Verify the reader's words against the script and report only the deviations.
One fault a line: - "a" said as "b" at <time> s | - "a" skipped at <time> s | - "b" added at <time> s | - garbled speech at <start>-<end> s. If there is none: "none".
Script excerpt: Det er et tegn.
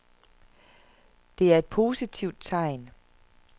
- "positivt" added at 1.6 s